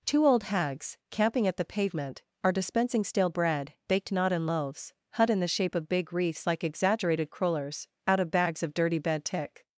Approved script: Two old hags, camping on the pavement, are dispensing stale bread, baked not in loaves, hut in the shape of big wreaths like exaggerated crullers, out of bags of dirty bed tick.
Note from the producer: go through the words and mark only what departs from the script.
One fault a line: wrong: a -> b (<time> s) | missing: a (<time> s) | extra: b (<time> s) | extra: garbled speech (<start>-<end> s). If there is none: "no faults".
wrong: on -> at (1.5 s)